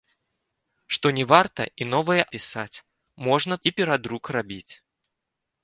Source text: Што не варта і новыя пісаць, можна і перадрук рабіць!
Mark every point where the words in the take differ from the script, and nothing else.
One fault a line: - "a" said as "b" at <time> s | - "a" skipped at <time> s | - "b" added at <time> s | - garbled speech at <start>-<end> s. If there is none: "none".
none